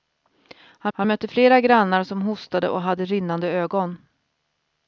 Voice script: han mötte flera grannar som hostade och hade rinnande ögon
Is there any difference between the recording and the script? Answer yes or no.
yes